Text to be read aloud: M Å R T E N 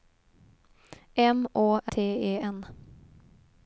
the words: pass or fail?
fail